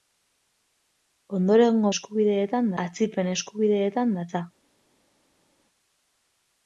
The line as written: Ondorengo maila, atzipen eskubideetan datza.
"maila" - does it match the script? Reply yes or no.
no